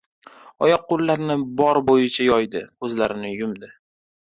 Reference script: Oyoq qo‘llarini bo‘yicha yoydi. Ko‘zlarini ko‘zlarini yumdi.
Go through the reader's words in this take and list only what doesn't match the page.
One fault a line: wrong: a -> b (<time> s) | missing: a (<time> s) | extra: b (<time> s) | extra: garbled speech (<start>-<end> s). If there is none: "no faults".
extra: bor (1.6 s)
missing: ko‘zlarini (3.4 s)